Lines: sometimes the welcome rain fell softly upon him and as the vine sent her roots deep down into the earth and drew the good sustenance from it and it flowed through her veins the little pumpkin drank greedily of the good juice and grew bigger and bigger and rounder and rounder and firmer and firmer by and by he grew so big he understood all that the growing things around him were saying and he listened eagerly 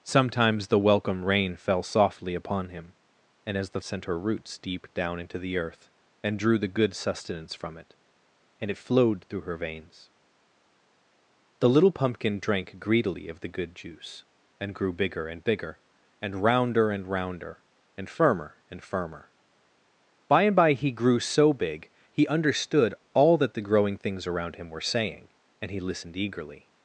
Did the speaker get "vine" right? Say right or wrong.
wrong